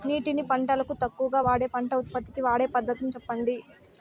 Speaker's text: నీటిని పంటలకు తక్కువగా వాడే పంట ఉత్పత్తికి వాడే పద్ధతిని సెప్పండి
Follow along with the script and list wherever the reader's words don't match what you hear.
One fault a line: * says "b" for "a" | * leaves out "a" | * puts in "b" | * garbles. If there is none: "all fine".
all fine